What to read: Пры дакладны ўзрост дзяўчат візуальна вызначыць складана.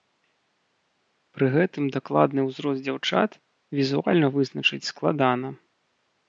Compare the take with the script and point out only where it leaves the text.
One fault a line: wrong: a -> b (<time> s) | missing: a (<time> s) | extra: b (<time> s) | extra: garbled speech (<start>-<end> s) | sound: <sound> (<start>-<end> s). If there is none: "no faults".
extra: гэтым (1.6 s)